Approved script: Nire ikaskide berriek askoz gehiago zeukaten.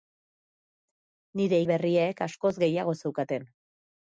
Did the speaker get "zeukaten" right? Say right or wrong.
right